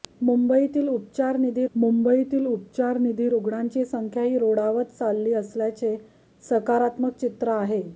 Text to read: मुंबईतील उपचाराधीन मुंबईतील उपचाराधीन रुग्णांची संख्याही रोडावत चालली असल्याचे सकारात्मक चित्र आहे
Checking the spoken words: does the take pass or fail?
pass